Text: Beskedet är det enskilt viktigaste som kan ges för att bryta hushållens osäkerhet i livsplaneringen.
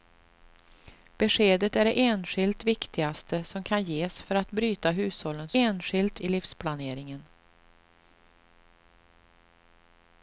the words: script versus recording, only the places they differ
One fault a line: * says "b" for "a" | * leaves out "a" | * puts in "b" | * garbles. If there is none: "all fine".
* says "enskilt" for "osäkerhet"